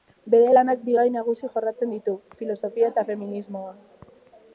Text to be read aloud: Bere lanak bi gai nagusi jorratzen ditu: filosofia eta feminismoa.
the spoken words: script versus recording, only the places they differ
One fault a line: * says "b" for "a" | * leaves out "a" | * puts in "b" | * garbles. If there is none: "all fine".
all fine